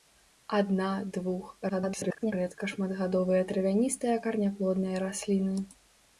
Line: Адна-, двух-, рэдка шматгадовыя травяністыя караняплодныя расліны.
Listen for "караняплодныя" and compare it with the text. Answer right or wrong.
right